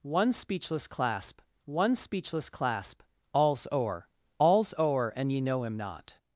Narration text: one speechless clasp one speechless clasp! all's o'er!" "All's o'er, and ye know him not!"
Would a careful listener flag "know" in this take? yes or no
no